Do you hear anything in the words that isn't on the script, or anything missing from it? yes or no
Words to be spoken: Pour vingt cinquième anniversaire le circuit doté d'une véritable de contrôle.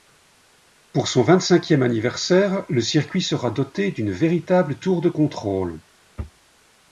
yes